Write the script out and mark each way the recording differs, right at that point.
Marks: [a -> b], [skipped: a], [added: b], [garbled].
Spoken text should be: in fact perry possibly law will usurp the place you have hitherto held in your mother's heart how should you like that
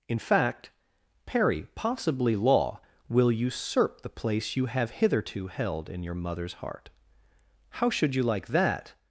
in fact perry possibly law will usurp the place you have hitherto held in your mother's heart how should you like that